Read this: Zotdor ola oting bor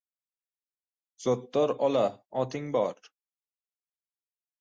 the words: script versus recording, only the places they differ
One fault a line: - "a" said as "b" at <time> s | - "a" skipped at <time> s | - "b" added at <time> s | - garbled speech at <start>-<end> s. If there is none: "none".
none